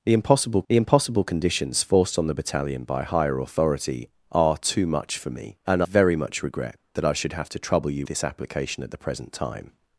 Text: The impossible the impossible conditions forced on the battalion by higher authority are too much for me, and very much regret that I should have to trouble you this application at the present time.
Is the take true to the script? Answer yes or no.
yes